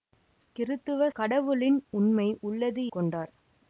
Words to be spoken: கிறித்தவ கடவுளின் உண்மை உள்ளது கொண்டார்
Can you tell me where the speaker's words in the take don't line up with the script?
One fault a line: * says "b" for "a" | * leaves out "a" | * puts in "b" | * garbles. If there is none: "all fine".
all fine